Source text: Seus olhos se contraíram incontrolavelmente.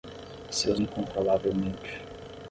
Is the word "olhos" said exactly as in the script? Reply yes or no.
no